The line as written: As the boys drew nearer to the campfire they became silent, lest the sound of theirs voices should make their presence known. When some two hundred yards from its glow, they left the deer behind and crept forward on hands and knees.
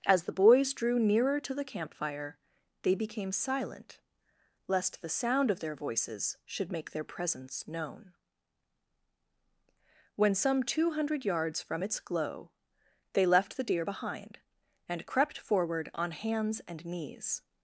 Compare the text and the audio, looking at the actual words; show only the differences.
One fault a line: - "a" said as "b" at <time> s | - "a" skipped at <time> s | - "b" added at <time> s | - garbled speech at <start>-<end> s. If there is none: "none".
- "theirs" said as "their" at 5.6 s